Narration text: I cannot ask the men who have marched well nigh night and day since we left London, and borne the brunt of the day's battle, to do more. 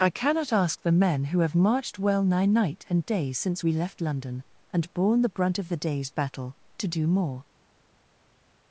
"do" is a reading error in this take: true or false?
false